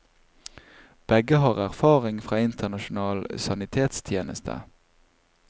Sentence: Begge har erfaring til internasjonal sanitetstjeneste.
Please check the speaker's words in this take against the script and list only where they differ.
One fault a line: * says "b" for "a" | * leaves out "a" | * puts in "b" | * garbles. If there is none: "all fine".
* says "fra" for "til"